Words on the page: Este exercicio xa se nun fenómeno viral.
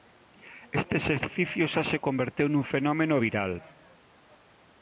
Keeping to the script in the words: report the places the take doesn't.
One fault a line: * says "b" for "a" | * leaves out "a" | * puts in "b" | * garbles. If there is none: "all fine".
* puts in "converteu"